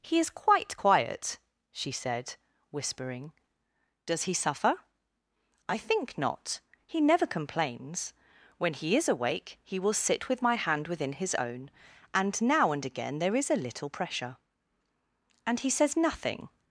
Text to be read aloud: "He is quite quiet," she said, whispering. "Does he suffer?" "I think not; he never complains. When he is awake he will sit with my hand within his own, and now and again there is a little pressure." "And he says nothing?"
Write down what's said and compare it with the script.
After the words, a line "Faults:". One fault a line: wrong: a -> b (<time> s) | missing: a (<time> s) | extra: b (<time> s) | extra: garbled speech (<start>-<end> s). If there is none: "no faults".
"He is quite quiet," she said, whispering. "Does he suffer?" "I think not; he never complains. When he is awake he will sit with my hand within his own, and now and again there is a little pressure." "And he says nothing?"
Faults:
no faults